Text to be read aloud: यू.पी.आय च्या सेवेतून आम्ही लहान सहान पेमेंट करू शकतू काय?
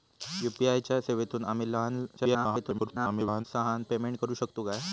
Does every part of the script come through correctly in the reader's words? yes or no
no